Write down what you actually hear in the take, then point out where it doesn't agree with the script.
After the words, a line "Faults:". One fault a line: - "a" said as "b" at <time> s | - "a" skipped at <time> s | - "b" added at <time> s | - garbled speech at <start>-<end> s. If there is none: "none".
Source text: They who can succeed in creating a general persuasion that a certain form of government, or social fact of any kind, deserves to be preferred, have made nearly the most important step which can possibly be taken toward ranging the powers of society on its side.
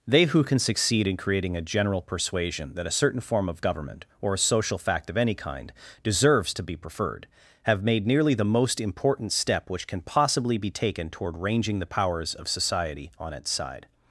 They who can succeed in creating a general persuasion that a certain form of government, or a social fact of any kind, deserves to be preferred, have made nearly the most important step which can possibly be taken toward ranging the powers of society on its side.
Faults:
- "a" added at 4.3 s